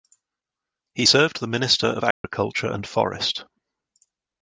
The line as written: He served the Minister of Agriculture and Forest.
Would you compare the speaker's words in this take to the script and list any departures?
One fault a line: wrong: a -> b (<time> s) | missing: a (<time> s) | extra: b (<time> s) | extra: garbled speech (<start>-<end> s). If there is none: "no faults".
no faults